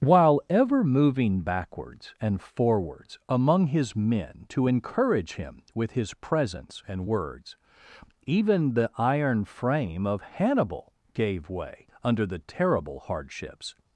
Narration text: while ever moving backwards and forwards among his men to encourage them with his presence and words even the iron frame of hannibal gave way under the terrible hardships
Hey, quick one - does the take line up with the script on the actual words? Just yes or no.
no